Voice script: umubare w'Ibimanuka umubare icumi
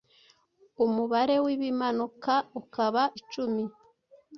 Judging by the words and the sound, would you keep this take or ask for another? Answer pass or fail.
fail